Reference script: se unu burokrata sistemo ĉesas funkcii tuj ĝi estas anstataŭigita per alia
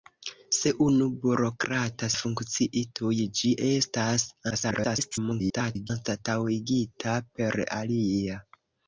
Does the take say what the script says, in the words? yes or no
no